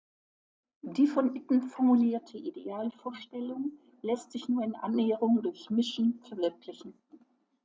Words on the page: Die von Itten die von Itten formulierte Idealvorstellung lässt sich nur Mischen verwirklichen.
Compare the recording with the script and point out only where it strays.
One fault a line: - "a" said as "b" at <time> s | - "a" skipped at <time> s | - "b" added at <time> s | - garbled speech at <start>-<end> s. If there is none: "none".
- "die von Itten" skipped at 1.6 s
- "in Annäherung durch" added at 4.6 s